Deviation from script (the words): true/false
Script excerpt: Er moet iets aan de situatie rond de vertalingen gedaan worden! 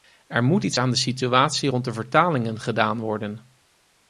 false